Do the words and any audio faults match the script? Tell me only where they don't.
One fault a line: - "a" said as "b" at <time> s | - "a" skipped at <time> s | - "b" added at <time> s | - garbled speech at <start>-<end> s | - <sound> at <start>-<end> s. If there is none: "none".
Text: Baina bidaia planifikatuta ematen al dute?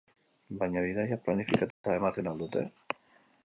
- dropout at 1.7-1.8 s